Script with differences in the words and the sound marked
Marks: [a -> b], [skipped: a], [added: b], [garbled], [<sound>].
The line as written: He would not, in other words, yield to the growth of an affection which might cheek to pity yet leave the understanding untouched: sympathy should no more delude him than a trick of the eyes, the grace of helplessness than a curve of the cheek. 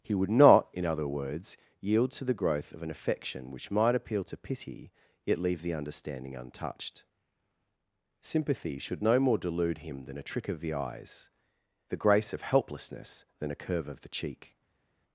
He would not, in other words, yield to the growth of an affection which might [cheek -> appeal] to pity yet leave the understanding untouched: sympathy should no more delude him than a trick of the eyes, the grace of helplessness than a curve of the cheek.